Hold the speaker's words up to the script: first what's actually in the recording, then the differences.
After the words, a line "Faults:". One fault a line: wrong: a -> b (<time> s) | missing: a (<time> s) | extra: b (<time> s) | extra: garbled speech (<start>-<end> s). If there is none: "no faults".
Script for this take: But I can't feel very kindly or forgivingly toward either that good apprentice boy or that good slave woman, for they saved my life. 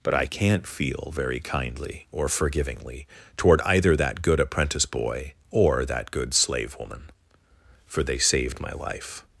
But I can't feel very kindly or forgivingly toward either that good apprentice boy or that good slave woman, for they saved my life.
Faults:
no faults